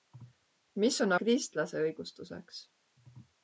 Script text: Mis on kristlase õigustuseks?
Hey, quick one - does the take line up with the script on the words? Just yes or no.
yes